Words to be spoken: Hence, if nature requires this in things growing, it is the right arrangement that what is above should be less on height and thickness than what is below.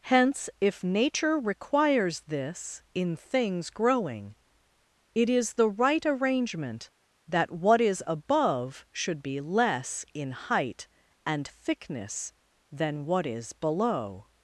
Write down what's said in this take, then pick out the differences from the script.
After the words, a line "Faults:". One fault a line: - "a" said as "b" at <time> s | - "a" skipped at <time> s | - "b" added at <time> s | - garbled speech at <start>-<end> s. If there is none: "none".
Hence, if nature requires this in things growing, it is the right arrangement that what is above should be less in height and thickness than what is below.
Faults:
- "on" said as "in" at 10.1 s